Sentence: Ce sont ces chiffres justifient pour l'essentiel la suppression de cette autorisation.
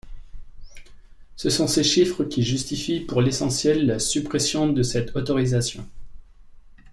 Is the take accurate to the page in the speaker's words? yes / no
no